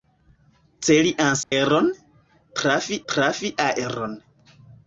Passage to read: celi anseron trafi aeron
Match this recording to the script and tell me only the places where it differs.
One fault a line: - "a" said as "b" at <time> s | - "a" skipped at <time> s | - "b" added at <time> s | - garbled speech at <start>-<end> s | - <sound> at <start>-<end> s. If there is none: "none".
- dropout at 1.4-1.5 s
- "trafi" added at 3.1 s